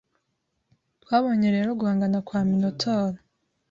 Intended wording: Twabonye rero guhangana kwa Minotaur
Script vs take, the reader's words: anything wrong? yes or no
no